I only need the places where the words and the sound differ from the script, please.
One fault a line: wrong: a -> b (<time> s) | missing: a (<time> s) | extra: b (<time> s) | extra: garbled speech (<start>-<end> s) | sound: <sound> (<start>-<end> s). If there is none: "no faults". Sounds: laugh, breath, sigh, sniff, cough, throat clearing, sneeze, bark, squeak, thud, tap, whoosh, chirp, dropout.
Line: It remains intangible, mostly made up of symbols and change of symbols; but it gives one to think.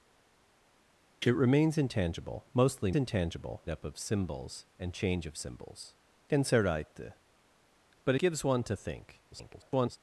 wrong: made -> intangible (2.9 s)
missing: it (8.1 s)
extra: garbled speech (9.3-10.0 s)